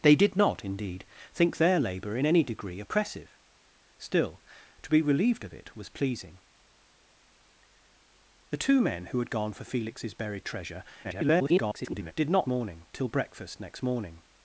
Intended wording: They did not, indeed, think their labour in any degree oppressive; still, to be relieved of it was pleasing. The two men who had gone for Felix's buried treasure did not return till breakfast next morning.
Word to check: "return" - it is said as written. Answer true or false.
false